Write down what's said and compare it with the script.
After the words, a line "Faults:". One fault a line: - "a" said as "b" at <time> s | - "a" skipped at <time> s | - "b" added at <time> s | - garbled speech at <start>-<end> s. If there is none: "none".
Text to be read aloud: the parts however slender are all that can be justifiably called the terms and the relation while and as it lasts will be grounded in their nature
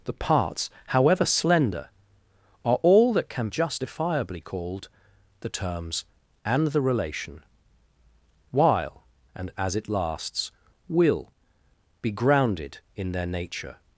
the parts however slender are all that can justifiably called the terms and the relation while and as it lasts will be grounded in their nature
Faults:
- "be" skipped at 3.5 s